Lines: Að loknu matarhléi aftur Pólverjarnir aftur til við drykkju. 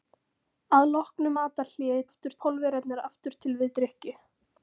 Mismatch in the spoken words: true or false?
false